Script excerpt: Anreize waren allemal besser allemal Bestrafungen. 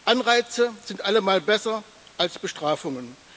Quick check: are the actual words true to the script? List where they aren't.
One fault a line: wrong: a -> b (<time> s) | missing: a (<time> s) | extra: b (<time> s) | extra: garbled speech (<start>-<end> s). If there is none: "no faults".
wrong: waren -> sind (0.8 s)
wrong: allemal -> als (2.2 s)